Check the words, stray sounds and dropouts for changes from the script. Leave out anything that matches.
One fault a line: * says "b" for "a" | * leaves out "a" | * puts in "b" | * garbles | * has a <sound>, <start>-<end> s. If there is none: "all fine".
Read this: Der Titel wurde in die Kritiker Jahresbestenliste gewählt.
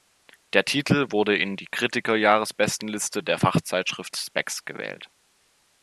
* puts in "der Fachzeitschrift Spex"